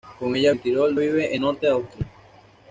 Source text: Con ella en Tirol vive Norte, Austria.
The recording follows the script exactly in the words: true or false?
true